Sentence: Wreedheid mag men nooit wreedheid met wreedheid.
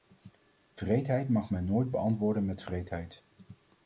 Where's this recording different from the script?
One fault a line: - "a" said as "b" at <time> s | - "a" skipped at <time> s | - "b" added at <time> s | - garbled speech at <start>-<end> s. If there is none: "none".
- "wreedheid" said as "beantwoorden" at 1.9 s